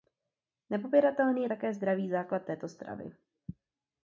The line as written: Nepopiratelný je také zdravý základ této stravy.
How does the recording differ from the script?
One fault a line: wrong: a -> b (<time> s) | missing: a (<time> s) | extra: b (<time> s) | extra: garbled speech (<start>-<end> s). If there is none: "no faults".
no faults